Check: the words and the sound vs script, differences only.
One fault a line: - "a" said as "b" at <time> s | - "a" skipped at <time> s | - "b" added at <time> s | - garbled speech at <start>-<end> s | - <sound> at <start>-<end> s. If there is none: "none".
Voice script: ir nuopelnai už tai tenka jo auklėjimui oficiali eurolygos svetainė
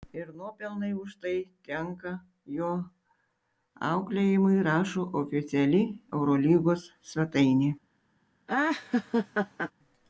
- "rašo" added at 4.7 s
- laugh at 8.5-9.7 s